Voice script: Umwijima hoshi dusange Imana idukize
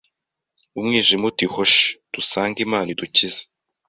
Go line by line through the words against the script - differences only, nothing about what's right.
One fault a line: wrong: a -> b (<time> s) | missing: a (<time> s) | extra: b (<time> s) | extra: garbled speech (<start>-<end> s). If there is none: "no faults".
extra: uti (1.3 s)